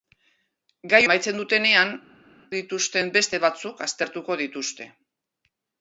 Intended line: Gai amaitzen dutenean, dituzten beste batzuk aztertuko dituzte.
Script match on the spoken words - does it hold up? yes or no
yes